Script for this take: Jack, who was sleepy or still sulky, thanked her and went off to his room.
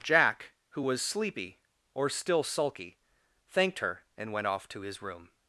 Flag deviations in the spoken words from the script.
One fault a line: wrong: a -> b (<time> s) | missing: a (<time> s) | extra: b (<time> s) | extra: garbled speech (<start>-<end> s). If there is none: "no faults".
no faults